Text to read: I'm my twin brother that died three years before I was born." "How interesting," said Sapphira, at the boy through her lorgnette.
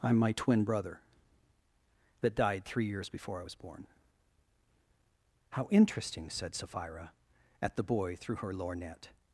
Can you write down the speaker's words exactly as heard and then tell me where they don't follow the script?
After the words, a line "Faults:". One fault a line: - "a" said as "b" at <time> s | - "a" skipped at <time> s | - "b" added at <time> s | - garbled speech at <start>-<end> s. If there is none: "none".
I'm my twin brother that died three years before I was born." "How interesting," said Sapphira, at the boy through her lorgnette.
Faults:
none